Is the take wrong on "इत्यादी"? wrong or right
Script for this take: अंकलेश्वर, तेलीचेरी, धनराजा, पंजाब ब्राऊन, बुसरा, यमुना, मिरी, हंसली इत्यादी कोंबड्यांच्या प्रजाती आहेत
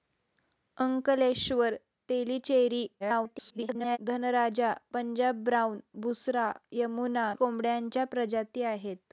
wrong